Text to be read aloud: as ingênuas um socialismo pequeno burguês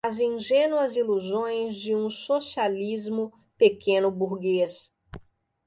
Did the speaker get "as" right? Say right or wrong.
right